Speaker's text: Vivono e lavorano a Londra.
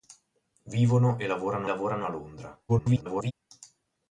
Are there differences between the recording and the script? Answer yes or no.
yes